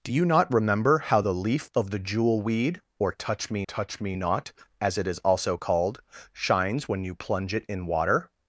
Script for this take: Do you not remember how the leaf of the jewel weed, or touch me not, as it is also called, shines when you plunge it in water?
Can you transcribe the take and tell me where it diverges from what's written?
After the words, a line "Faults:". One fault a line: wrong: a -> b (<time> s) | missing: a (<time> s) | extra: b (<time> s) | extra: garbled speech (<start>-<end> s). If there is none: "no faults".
Do you not remember how the leaf of the jewel weed, or touch me touch me not, as it is also called, shines when you plunge it in water?
Faults:
extra: touch me (3.6 s)